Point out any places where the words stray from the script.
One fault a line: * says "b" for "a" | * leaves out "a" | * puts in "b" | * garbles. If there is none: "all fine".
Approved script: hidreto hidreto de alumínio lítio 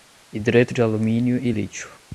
* leaves out "hidreto"
* puts in "e"